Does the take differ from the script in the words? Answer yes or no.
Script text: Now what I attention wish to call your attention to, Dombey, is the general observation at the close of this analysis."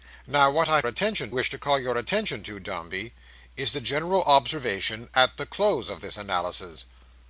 no